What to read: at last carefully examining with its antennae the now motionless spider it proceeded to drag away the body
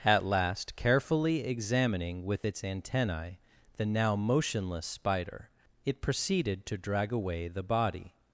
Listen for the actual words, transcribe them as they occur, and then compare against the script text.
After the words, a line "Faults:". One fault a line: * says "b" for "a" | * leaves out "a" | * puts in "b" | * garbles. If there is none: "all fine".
at last carefully examining with its antennae the now motionless spider it proceeded to drag away the body
Faults:
all fine